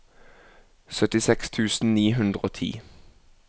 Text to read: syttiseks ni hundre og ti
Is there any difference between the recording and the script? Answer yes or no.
yes